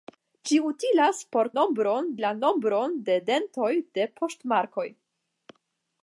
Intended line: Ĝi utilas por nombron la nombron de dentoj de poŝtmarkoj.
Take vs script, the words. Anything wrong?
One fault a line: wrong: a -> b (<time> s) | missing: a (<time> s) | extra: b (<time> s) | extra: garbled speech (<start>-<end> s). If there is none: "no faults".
no faults